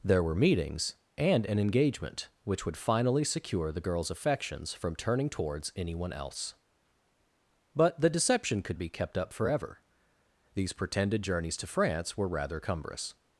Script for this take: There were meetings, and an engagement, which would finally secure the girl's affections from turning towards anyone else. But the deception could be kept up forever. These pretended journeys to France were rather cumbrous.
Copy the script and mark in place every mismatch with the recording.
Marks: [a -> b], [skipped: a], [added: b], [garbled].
There were meetings, and an engagement, which would finally secure the girl's affections from turning towards anyone else. But the deception could be kept up forever. These pretended journeys to France were rather cumbrous.